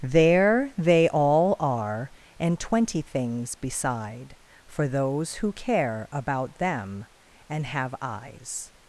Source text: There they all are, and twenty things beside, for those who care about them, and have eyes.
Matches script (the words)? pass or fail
pass